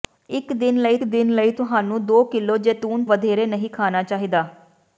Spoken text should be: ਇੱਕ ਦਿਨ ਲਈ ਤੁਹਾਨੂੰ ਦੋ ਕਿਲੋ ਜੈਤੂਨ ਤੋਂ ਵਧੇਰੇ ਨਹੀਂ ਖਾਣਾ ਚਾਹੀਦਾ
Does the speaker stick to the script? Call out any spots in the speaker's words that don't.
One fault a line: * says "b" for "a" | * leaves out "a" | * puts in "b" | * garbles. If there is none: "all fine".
* puts in "ਦਿਨ ਲਈ"
* leaves out "ਤੋਂ"